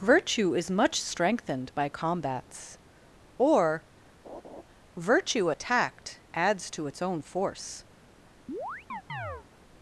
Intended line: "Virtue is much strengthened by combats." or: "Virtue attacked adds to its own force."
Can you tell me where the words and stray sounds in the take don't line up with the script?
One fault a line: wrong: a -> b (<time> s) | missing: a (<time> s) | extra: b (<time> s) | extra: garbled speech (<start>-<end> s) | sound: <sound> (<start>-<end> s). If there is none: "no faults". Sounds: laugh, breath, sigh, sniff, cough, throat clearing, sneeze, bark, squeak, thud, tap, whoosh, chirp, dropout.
sound: laugh (4.2-4.6 s)
sound: chirp (8.5-9.5 s)